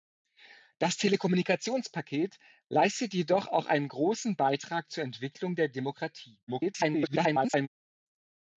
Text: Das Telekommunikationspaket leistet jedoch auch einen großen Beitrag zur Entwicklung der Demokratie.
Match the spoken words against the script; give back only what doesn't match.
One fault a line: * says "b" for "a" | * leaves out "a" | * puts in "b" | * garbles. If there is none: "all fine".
* garbles